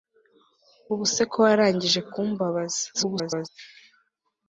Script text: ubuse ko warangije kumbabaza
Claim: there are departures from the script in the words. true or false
true